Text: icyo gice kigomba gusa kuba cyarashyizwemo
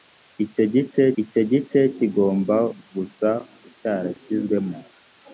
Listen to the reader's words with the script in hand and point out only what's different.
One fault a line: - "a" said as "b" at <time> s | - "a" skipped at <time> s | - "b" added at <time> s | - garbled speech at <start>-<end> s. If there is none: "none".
- "icyo gice" added at 1.2 s
- "kuba" skipped at 3.3 s